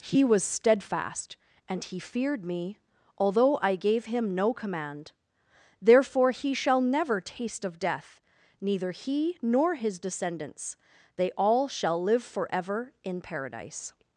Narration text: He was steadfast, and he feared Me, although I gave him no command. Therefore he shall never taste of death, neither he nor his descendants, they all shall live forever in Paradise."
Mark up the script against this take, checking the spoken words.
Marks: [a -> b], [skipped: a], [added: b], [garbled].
He was steadfast, and he feared Me, although I gave him no command. Therefore he shall never taste of death, neither he nor his descendants, they all shall live forever in Paradise."